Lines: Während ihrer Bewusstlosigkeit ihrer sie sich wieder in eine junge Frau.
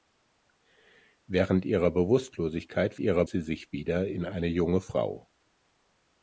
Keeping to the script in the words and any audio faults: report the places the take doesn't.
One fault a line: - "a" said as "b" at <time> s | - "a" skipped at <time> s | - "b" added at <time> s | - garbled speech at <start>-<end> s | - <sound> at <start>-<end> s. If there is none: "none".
none